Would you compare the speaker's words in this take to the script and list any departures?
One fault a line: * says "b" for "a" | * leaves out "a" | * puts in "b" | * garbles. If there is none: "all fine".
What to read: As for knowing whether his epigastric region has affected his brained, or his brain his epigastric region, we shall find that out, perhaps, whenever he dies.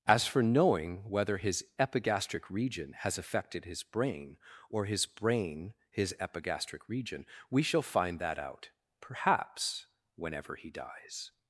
* says "brain" for "brained"